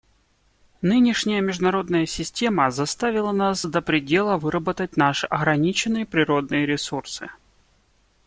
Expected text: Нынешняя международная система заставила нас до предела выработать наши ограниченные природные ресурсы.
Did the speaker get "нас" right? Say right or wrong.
right